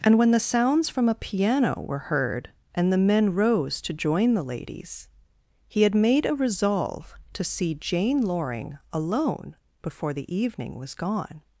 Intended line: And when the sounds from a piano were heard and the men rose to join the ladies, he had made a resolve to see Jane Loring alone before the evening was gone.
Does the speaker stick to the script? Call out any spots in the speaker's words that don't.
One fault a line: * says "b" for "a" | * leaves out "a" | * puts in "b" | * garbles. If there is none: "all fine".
all fine